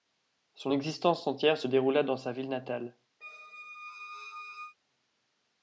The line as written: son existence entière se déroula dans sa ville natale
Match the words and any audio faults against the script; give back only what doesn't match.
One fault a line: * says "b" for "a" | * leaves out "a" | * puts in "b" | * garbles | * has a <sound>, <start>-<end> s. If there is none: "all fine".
* has a squeak, 3.2-4.8 s